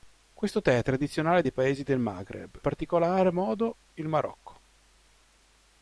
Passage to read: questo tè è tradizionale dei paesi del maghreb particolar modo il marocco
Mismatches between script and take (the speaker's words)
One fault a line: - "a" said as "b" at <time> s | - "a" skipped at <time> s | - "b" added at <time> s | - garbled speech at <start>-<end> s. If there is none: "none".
none